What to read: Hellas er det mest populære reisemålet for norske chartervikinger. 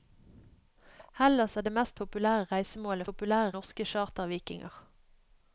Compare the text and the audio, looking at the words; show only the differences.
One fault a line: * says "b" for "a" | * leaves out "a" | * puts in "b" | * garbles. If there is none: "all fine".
* says "populære" for "for"